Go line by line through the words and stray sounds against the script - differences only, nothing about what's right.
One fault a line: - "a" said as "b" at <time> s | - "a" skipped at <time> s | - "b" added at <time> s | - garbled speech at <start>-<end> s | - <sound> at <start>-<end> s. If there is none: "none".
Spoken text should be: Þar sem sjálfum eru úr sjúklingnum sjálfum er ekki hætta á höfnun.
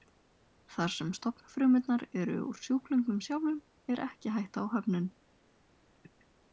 - "sjálfum" said as "stofnfrumurnar" at 1.2 s